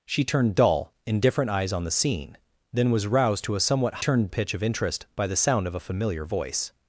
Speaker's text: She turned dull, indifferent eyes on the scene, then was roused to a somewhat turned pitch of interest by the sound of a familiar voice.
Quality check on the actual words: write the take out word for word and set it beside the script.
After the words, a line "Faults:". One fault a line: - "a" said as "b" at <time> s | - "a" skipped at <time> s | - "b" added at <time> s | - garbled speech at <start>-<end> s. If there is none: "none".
She turned dull, indifferent eyes on the scene, then was roused to a somewhat turned pitch of interest by the sound of a familiar voice.
Faults:
none